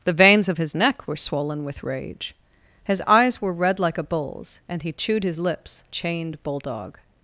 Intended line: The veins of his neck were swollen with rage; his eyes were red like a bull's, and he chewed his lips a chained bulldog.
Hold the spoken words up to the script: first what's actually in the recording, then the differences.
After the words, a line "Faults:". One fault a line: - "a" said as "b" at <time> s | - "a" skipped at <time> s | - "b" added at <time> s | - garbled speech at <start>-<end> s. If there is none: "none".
The veins of his neck were swollen with rage; his eyes were red like a bull's, and he chewed his lips a chained bulldog.
Faults:
none